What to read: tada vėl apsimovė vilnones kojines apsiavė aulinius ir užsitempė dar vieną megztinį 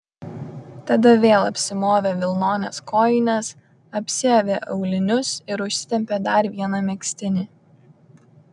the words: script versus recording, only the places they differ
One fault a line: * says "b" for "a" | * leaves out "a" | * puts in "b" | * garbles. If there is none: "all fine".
all fine